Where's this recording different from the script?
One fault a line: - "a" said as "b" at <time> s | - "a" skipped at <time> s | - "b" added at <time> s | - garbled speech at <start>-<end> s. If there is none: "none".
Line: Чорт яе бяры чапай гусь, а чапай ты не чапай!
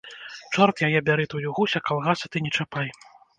- "чапай" said as "тую" at 1.3 s
- "чапай" said as "калгасы" at 1.9 s